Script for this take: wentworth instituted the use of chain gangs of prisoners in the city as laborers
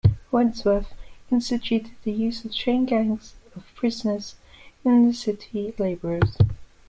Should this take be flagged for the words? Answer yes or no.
yes